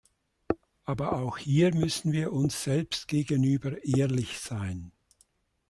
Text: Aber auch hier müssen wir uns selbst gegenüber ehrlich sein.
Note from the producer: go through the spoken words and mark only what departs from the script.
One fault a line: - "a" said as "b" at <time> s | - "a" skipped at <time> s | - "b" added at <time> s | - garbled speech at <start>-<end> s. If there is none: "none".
none